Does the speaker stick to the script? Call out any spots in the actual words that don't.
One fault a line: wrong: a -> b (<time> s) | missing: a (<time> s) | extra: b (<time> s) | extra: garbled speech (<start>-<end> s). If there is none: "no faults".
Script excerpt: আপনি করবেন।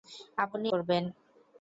no faults